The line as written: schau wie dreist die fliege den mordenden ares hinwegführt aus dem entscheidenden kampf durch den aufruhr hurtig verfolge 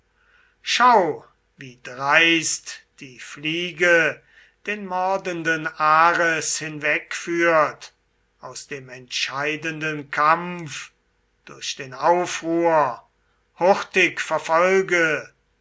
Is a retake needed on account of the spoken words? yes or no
no